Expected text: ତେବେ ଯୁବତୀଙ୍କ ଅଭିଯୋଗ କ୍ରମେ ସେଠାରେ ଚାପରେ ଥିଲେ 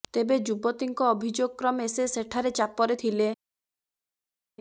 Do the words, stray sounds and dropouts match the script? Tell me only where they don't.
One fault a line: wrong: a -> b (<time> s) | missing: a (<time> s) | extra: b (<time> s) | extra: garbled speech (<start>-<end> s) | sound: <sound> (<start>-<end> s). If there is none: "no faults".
extra: ସେ (1.9 s)